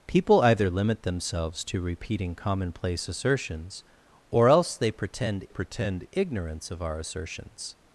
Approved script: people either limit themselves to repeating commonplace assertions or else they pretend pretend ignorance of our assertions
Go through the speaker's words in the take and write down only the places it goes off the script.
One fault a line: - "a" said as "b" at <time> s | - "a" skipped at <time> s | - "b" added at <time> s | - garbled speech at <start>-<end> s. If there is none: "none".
none